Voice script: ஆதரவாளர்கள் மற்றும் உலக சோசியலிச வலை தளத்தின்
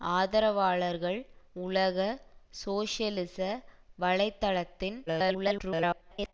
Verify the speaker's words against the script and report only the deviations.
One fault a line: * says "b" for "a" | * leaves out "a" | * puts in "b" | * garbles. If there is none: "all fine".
* leaves out "மற்றும்"
* garbles